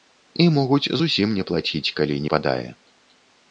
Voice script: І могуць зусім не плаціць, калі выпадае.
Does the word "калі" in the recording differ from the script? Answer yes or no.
no